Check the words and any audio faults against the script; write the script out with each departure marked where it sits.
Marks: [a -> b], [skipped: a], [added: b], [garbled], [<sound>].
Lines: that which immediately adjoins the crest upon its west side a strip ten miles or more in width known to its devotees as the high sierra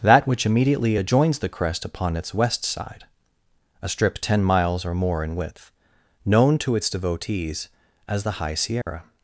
that which immediately adjoins the crest upon its west side a strip ten miles or more in width known to its devotees as the high sierra [dropout]